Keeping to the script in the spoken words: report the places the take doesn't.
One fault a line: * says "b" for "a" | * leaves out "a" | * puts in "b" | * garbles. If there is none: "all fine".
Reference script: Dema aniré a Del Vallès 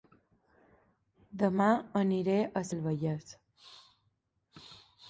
all fine